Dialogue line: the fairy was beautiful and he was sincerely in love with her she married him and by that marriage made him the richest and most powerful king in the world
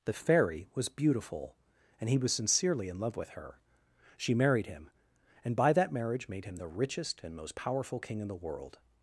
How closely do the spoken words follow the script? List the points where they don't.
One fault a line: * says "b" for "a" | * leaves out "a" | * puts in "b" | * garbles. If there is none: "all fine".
all fine